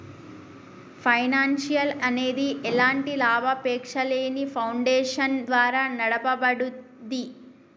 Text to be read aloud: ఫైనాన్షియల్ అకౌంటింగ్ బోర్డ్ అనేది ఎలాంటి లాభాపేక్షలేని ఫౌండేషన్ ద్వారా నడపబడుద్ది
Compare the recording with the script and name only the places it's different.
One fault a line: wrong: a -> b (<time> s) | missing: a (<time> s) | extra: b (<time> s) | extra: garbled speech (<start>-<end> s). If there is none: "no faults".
missing: అకౌంటింగ్ బోర్డ్ (1.9 s)